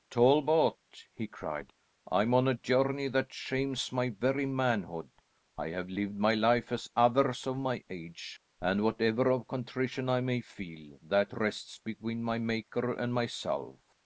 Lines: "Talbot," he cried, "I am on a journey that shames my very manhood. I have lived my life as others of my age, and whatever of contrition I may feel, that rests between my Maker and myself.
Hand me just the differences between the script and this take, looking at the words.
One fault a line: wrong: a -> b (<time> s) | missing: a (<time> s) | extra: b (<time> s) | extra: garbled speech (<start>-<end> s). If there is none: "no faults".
no faults